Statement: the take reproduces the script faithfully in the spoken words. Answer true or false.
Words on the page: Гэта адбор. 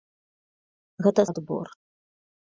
true